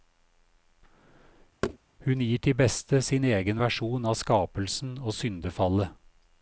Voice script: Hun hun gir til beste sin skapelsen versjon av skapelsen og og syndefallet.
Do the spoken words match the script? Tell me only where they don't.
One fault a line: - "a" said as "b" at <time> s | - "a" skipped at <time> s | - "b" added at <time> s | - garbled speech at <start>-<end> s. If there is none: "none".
- "hun" skipped at 2.2 s
- "skapelsen" said as "egen" at 3.2 s
- "og" skipped at 5.1 s